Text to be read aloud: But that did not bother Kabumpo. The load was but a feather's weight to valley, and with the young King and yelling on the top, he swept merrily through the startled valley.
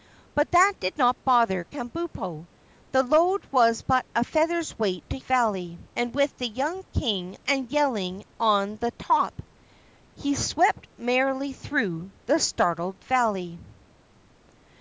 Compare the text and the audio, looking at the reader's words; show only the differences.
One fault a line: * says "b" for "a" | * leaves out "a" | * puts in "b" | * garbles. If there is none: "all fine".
all fine